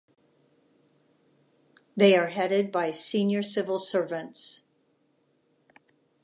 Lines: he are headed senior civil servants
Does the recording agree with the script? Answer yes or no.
no